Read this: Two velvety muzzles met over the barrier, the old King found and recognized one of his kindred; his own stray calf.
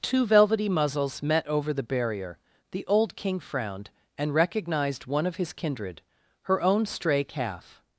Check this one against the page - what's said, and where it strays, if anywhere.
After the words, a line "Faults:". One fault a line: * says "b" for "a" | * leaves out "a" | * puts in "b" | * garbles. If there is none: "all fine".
Two velvety muzzles met over the barrier, the old King frowned and recognized one of his kindred; her own stray calf.
Faults:
* says "frowned" for "found"
* says "her" for "his"